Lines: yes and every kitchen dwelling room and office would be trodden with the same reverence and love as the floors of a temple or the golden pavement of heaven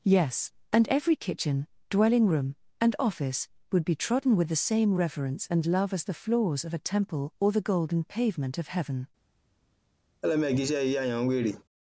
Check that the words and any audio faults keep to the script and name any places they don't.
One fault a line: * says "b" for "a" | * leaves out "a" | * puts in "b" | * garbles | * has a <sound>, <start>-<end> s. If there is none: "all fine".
* has a laugh, 10.2-11.6 s